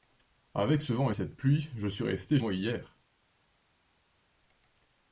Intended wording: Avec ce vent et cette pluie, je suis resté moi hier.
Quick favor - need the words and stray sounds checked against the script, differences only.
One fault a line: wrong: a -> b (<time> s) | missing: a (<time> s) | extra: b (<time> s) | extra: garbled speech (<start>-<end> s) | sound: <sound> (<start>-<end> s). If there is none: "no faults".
no faults